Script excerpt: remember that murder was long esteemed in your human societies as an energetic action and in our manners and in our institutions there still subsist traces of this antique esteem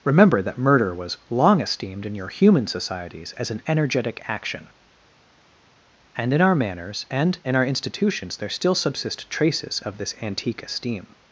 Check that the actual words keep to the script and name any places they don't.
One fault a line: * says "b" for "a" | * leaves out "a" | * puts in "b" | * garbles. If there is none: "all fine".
all fine